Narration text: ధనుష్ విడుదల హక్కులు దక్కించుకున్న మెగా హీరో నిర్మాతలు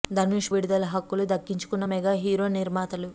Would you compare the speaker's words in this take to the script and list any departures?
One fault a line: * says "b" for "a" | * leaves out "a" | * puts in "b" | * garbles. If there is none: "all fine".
all fine